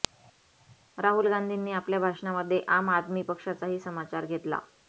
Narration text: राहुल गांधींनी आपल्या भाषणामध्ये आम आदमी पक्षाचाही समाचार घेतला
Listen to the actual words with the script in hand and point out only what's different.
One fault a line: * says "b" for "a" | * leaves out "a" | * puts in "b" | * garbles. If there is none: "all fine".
all fine